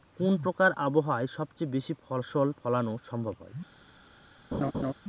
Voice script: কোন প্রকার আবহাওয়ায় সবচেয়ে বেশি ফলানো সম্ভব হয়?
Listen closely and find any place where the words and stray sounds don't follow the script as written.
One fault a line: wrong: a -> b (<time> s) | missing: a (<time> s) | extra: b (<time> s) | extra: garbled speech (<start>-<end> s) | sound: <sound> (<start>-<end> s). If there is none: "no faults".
extra: ফসল (2.0 s)
sound: laugh (4.5-4.9 s)